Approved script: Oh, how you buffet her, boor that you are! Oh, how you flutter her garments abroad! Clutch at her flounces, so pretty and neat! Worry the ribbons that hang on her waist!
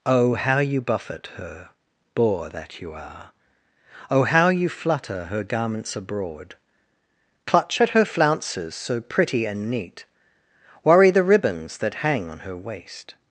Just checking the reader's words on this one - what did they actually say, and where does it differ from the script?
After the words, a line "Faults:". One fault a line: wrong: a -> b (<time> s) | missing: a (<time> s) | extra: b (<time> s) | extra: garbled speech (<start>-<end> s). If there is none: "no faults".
Oh, how you buffet her, boor that you are! Oh, how you flutter her garments abroad! Clutch at her flounces, so pretty and neat! Worry the ribbons that hang on her waist!
Faults:
no faults